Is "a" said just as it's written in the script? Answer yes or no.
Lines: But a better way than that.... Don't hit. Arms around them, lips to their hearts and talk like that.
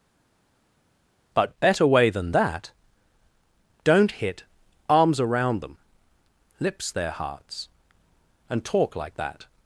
no